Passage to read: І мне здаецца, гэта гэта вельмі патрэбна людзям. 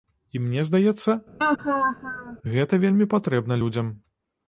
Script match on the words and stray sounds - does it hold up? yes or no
no